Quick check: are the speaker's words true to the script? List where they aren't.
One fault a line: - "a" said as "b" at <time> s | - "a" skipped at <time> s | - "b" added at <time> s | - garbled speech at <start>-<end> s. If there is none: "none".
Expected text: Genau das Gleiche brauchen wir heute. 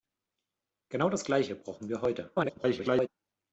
- garbled speech at 2.3-3.1 s